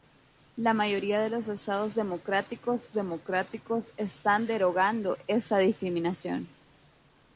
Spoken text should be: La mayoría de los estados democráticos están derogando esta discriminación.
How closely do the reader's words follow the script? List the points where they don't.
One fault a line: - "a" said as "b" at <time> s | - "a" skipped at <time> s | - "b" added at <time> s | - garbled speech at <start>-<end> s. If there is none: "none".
- "democráticos" added at 2.9 s